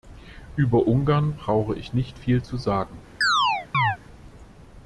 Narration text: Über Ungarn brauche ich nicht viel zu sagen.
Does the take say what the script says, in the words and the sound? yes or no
no